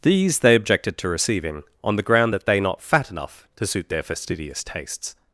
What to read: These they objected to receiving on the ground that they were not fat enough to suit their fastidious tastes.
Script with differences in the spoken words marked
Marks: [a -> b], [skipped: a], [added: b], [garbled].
These they objected to receiving on the ground that they [skipped: were] not fat enough to suit their fastidious tastes.